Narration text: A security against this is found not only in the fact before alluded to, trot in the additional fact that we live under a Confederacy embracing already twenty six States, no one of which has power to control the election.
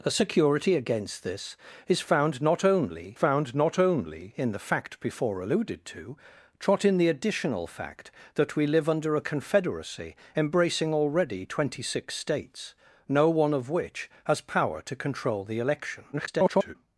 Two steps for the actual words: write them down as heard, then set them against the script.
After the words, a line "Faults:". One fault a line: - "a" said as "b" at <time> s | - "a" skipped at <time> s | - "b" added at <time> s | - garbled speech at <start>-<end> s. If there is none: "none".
A security against this is found not only found not only in the fact before alluded to, trot in the additional fact that we live under a Confederacy embracing already twenty six States, no one of which has power to control the election. [garbled]
Faults:
- "found not only" added at 3.1 s
- garbled speech at 16.1-16.8 s